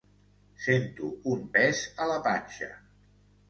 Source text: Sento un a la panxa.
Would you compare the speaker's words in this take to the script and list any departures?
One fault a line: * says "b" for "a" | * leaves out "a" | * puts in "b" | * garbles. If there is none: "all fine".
* puts in "pes"